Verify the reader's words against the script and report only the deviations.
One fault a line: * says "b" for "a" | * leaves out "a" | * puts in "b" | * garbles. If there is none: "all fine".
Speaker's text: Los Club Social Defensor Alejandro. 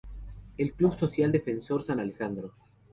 * says "El" for "Los"
* puts in "San"